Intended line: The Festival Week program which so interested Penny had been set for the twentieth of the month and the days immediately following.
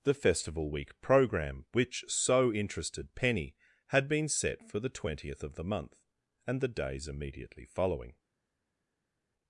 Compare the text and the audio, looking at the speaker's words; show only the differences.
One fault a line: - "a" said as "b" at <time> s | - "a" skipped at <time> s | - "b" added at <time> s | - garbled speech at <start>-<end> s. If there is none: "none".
none